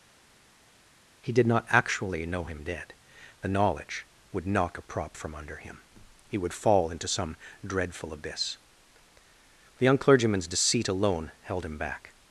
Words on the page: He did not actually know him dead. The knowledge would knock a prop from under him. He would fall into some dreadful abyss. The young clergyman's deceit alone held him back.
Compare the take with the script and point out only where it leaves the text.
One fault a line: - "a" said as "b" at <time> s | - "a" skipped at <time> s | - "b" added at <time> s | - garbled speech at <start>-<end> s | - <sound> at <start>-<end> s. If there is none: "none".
none